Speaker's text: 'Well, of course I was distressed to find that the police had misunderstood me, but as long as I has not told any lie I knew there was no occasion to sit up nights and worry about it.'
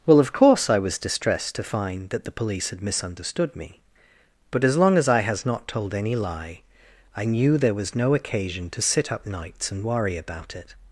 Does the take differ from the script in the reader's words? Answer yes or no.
no